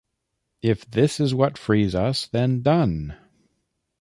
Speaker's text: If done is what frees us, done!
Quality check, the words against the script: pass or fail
fail